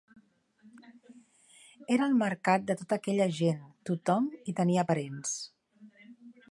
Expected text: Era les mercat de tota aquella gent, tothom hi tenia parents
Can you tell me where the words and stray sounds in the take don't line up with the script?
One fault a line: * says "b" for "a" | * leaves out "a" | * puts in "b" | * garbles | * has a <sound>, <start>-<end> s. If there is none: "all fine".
* says "el" for "les"